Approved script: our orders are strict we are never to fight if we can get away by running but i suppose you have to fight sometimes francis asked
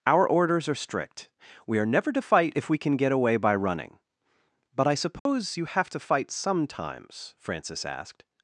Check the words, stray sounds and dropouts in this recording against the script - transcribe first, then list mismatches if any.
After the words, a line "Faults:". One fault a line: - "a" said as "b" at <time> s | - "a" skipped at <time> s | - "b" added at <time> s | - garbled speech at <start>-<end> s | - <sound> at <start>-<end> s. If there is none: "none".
our orders are strict we are never to fight if we can get away by running but i suppose you have to fight sometimes francis asked
Faults:
- dropout at 5.2-5.3 s